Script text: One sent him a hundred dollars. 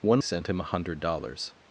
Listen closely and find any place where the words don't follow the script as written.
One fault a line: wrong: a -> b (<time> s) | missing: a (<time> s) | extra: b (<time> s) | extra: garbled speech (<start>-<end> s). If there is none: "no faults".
no faults